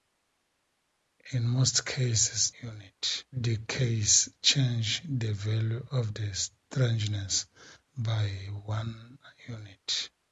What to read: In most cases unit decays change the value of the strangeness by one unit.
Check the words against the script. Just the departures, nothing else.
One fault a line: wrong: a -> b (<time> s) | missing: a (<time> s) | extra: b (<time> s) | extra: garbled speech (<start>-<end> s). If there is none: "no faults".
no faults